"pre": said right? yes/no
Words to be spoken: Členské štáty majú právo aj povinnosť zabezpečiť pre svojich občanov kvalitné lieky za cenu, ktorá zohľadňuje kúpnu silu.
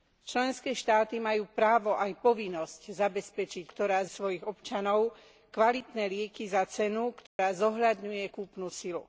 no